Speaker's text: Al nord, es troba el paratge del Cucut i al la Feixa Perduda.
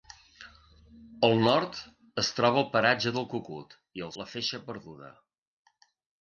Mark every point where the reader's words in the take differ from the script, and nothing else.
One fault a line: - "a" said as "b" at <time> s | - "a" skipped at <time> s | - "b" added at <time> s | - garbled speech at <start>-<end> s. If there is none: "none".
none